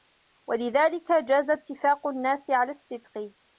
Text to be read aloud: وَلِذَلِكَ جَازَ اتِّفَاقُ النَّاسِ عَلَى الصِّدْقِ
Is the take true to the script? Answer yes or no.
yes